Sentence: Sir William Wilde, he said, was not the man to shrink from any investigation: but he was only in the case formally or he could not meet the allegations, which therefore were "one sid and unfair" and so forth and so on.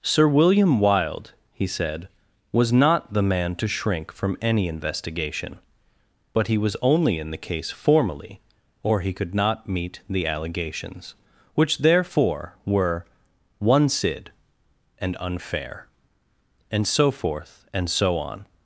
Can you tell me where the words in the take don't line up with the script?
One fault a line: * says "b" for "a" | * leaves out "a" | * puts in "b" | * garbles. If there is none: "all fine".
all fine